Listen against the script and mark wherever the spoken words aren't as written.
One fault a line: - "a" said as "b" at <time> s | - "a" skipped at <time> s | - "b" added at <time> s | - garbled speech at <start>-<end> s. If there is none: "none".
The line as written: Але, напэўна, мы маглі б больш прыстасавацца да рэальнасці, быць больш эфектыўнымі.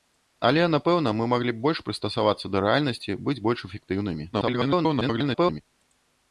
- garbled speech at 4.3-5.6 s